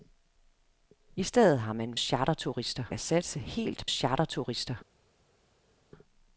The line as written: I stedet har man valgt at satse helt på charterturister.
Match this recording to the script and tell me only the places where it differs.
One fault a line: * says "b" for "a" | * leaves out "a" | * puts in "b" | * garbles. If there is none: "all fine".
* says "charterturister" for "valgt"
* leaves out "på"